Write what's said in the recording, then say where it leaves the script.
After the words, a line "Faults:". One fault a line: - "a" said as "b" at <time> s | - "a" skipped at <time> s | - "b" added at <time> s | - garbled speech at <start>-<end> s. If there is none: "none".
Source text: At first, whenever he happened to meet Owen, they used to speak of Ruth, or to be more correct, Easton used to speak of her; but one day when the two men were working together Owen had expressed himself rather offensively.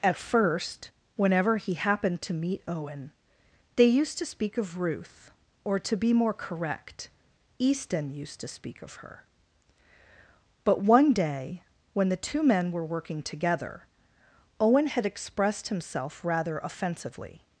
At first, whenever he happened to meet Owen, they used to speak of Ruth, or to be more correct, Easton used to speak of her; but one day when the two men were working together Owen had expressed himself rather offensively.
Faults:
none